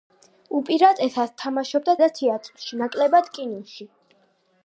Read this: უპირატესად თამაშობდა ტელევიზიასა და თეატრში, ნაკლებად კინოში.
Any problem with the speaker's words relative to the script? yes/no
yes